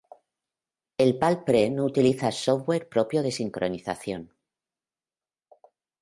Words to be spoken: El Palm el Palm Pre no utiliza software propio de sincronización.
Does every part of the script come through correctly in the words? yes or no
no